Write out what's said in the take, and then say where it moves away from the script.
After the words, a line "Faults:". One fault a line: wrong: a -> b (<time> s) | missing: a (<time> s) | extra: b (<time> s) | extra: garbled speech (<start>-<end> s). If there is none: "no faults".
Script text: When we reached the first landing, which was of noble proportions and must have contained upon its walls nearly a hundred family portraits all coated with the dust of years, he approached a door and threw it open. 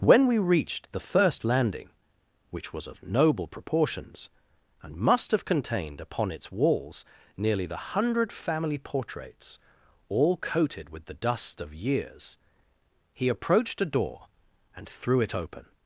When we reached the first landing, which was of noble proportions and must have contained upon its walls nearly the hundred family portraits all coated with the dust of years, he approached a door and threw it open.
Faults:
wrong: a -> the (7.7 s)